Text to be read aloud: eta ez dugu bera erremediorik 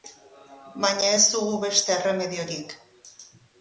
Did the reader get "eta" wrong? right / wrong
wrong